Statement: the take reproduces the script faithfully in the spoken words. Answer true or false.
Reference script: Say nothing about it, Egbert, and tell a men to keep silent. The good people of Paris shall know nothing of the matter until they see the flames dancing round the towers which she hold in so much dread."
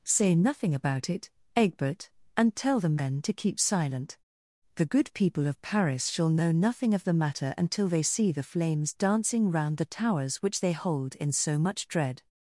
false